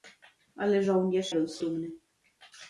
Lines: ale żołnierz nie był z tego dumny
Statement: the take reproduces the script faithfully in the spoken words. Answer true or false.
false